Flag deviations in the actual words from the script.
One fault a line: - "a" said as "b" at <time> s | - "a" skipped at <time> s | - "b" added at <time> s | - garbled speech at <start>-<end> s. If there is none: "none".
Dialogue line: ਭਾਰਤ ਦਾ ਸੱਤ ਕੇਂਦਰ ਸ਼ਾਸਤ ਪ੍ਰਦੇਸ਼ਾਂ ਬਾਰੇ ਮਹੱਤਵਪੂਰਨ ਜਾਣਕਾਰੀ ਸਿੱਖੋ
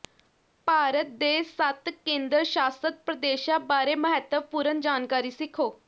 - "ਦਾ" said as "ਦੇ" at 1.2 s